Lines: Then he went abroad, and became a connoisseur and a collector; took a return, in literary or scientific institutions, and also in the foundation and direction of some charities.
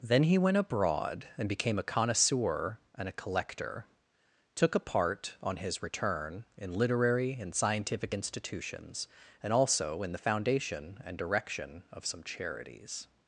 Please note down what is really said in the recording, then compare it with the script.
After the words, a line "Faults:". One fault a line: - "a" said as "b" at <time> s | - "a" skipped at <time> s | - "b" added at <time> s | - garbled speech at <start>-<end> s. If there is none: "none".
Then he went abroad, and became a connoisseur and a collector; took a part, on his return, in literary and scientific institutions, and also in the foundation and direction of some charities.
Faults:
- "part on his" added at 4.8 s
- "or" said as "and" at 7.3 s